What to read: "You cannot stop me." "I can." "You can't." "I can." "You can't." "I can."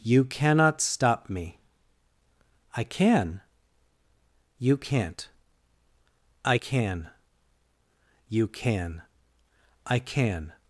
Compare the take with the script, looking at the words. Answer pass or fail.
fail